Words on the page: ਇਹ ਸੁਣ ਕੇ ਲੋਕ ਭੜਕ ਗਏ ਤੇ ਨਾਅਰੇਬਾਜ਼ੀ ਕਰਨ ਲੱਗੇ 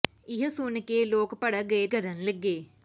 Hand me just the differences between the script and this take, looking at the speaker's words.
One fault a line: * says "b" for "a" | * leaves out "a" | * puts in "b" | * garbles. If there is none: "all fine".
* leaves out "ਤੇ ਨਾਅਰੇਬਾਜ਼ੀ"